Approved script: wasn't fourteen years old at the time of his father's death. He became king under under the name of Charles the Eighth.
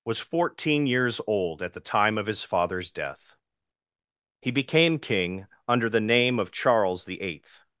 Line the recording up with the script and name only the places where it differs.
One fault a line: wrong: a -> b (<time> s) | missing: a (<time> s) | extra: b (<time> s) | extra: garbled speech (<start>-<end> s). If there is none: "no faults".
wrong: wasn't -> was (0.0 s)
missing: under (5.9 s)